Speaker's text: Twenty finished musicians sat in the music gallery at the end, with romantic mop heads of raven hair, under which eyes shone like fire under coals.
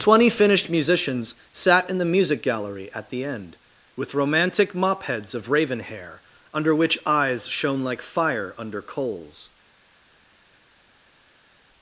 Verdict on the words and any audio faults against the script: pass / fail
pass